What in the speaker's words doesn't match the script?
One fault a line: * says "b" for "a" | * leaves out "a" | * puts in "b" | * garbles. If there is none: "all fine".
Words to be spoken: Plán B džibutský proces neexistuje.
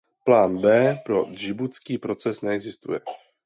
* puts in "pro"